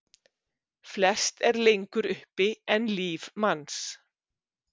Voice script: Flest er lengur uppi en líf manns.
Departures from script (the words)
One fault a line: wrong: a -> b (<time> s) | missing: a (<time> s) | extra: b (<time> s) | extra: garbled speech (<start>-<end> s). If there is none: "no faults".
no faults